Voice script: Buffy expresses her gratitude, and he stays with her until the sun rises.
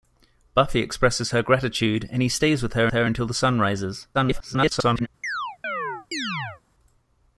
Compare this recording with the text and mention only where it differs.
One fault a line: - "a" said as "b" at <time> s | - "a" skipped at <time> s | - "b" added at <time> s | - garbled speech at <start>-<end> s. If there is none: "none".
- "her" added at 2.9 s
- garbled speech at 4.1-5.1 s